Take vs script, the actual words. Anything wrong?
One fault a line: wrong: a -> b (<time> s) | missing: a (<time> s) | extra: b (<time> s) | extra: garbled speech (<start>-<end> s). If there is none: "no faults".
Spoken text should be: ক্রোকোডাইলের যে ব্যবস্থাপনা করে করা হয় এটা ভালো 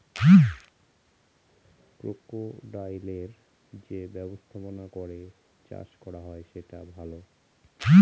extra: চাষ (5.7 s)
wrong: এটা -> সেটা (6.5 s)